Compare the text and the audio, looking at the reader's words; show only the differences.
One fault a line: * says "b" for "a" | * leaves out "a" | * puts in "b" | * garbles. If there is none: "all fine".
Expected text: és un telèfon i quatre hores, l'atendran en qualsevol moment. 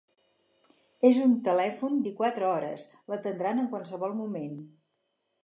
all fine